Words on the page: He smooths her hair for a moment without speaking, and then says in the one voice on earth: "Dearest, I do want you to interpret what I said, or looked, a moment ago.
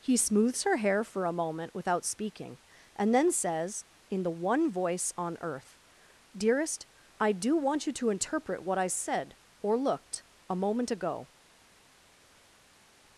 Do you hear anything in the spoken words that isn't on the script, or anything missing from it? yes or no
no